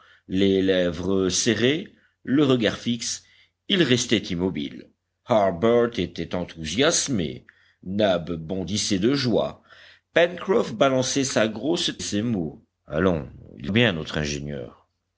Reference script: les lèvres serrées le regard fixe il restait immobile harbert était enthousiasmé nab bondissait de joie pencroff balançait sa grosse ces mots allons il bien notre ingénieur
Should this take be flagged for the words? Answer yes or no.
no